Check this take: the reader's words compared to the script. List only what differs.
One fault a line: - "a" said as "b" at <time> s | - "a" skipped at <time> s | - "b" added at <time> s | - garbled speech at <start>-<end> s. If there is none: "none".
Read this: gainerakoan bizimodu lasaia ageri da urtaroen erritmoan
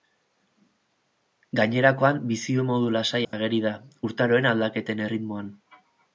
- "aldaketen" added at 4.5 s